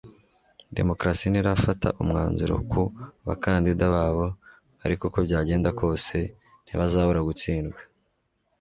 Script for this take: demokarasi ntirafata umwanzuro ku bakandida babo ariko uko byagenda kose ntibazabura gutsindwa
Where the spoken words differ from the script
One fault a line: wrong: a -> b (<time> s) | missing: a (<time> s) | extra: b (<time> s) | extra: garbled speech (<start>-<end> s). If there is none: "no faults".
no faults